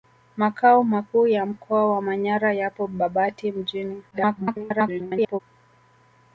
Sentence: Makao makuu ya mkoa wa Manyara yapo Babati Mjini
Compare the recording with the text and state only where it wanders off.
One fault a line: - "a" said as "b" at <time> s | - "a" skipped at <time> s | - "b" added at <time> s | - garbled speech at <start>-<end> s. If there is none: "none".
- garbled speech at 4.1-5.4 s